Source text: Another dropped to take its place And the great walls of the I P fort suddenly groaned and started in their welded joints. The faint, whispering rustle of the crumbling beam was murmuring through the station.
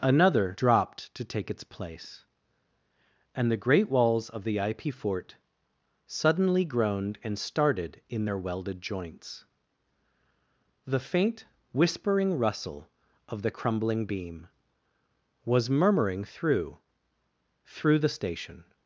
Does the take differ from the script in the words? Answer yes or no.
yes